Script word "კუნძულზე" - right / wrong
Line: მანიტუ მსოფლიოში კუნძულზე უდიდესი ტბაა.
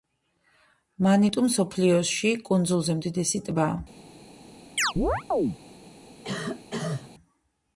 right